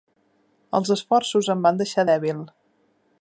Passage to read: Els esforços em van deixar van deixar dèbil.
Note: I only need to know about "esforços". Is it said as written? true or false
true